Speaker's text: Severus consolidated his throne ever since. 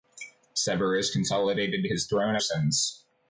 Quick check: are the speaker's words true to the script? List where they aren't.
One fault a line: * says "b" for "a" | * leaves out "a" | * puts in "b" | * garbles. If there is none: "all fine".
* leaves out "ever"